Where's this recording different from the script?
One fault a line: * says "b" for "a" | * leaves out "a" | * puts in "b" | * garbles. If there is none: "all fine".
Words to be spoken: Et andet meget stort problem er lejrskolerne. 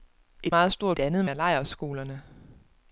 * leaves out "andet"
* says "andet" for "problem"